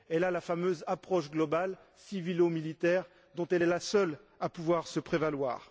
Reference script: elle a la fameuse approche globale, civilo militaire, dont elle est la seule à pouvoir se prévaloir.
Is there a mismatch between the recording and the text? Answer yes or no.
no